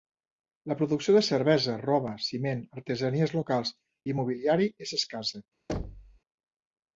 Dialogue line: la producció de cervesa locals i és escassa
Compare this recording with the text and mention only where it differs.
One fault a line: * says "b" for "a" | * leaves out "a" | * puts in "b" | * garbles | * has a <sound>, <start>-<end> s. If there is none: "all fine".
* puts in "roba ciment artesanies"
* puts in "mobiliari"
* has a thud, 5.7-6.2 s